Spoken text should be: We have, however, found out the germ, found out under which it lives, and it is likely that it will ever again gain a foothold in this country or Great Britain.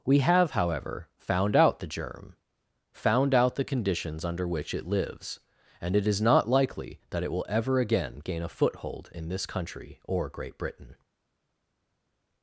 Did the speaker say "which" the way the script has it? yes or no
yes